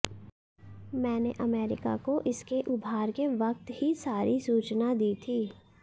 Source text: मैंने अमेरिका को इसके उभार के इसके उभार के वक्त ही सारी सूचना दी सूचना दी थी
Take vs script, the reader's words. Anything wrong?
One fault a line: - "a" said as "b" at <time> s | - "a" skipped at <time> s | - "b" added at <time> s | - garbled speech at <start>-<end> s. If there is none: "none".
- "इसके उभार के" skipped at 3.3 s
- "सूचना दी" skipped at 5.1 s